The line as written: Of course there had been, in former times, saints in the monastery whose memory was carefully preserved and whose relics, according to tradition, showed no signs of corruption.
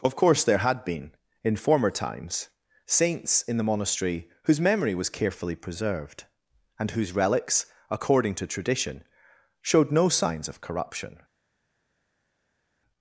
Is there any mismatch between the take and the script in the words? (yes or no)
no